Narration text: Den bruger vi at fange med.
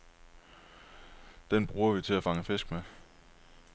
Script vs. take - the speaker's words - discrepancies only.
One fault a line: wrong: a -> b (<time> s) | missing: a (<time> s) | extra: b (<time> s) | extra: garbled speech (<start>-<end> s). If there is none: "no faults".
extra: til (2.0 s)
extra: fisk (2.4 s)